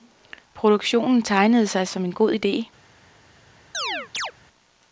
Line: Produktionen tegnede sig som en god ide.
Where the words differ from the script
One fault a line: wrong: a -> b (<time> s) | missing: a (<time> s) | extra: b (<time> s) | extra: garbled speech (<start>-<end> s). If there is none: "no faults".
no faults